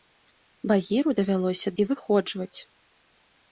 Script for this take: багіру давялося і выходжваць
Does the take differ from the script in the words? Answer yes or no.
no